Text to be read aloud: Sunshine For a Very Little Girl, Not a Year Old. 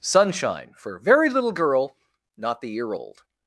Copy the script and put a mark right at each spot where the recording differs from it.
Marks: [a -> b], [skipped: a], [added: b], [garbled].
Sunshine For [skipped: a] Very Little Girl, Not [a -> the] Year Old.